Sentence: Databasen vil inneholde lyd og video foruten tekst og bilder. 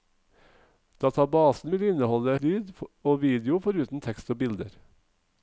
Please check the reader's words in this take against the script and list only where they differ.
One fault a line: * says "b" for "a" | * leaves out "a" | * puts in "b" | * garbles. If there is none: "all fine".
all fine